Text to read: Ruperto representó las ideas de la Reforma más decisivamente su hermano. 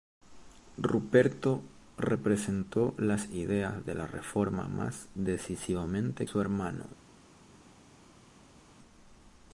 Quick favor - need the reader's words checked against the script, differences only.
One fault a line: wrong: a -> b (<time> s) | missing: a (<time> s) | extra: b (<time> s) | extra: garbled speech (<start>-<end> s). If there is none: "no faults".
no faults